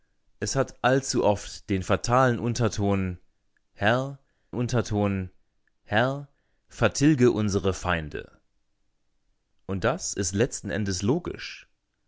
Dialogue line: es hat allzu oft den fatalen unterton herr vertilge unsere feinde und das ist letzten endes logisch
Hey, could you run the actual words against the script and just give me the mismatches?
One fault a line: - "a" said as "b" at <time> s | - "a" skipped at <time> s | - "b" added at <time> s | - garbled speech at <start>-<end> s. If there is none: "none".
- "unterton herr" added at 4.5 s